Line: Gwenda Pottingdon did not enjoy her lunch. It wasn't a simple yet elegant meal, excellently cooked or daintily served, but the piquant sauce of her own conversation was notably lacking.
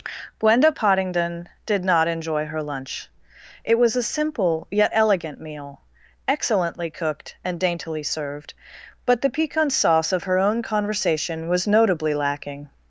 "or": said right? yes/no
no